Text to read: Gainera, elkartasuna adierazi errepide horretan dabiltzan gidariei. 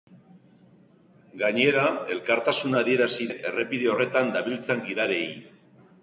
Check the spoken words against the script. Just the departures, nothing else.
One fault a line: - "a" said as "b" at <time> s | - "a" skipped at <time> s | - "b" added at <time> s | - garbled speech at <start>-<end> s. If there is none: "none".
none